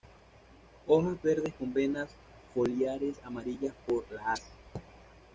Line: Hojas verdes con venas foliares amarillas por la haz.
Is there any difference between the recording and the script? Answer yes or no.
no